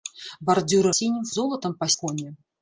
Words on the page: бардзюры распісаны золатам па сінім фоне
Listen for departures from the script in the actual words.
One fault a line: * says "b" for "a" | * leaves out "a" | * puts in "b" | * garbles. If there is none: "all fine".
* says "сінім" for "распісаны"
* leaves out "сінім"